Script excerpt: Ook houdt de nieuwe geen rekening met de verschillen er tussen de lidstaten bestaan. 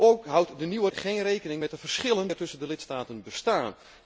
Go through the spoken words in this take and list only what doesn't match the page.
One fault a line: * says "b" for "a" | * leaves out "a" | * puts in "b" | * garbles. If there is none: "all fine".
all fine